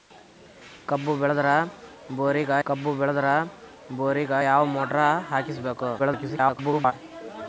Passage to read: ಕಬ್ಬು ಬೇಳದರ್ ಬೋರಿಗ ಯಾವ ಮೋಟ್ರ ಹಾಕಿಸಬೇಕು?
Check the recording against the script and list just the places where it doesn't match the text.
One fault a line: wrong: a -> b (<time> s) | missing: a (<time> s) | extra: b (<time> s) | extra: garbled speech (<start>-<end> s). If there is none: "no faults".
extra: ಕಬ್ಬು ಬೇಳದರ್ ಬೋರಿಗ (2.6 s)
extra: garbled speech (6.0-6.9 s)